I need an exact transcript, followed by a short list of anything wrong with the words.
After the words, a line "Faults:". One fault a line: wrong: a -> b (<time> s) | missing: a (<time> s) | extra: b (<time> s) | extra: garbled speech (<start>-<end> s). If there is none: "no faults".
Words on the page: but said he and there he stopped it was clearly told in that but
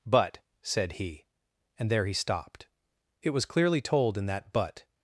but said he and there he stopped it was clearly told in that but
Faults:
no faults